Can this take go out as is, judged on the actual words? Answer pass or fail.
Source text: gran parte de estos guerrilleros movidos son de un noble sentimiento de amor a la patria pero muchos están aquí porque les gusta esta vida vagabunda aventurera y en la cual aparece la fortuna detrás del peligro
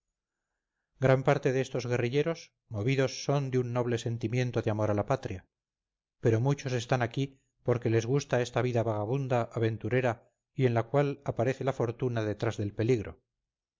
pass